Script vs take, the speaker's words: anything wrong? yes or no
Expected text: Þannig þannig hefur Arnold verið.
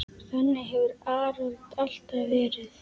yes